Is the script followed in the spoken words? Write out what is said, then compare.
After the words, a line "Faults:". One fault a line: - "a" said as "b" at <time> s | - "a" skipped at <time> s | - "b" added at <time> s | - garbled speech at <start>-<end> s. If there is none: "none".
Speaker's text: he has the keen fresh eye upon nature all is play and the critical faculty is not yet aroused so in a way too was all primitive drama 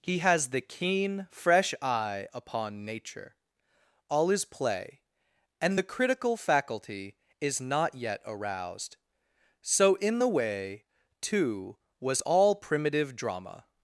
he has the keen fresh eye upon nature all is play and the critical faculty is not yet aroused so in the way too was all primitive drama
Faults:
- "a" said as "the" at 10.2 s